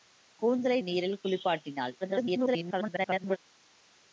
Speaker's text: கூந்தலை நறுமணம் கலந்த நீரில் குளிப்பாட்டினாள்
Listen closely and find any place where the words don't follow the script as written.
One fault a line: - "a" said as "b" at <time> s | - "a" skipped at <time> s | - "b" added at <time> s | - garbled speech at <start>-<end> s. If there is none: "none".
- "நறுமணம் கலந்த" skipped at 0.8 s
- garbled speech at 2.0-3.4 s